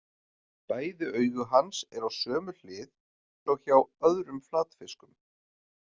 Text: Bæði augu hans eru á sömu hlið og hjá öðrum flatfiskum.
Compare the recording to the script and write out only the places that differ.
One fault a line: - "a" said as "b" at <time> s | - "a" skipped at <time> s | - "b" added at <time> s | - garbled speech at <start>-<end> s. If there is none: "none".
none